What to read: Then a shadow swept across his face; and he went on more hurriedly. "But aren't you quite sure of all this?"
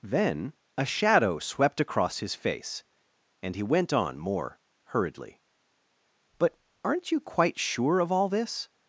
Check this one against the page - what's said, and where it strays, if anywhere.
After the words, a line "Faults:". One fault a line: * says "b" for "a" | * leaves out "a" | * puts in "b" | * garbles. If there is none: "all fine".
Then a shadow swept across his face; and he went on more hurriedly. "But aren't you quite sure of all this?"
Faults:
all fine